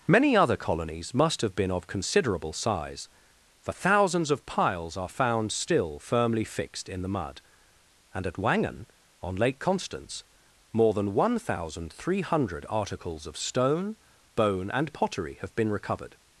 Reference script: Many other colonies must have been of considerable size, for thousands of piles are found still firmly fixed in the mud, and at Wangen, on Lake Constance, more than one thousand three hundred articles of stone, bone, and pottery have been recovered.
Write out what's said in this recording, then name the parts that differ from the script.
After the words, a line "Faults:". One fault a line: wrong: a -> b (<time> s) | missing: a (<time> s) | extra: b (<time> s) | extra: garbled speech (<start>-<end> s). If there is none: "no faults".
Many other colonies must have been of considerable size, for thousands of piles are found still firmly fixed in the mud, and at Wangen, on Lake Constance, more than one thousand three hundred articles of stone, bone, and pottery have been recovered.
Faults:
no faults